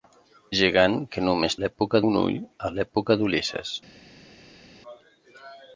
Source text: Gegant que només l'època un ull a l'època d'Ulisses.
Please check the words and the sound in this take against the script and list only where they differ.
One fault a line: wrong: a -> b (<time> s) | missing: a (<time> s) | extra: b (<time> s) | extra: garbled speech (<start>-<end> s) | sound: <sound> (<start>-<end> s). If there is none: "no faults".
no faults